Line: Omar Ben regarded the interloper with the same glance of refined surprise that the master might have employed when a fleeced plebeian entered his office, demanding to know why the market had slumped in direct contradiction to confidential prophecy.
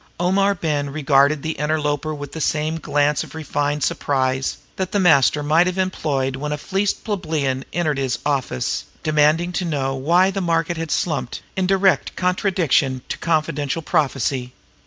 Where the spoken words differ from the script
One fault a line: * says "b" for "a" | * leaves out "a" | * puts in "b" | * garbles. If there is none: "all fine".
all fine